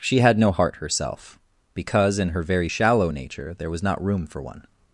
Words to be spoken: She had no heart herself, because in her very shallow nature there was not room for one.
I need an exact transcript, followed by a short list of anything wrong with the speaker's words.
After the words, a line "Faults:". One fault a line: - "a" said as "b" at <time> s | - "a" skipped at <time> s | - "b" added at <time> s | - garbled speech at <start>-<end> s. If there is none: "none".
She had no heart herself, because in her very shallow nature there was not room for one.
Faults:
none